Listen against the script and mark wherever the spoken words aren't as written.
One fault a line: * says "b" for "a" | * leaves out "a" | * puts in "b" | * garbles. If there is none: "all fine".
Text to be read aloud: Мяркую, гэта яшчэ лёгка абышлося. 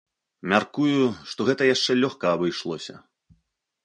* puts in "што"